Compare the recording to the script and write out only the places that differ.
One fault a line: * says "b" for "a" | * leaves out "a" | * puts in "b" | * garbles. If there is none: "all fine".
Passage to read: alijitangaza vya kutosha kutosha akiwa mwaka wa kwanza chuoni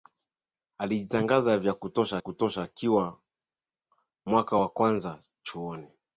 all fine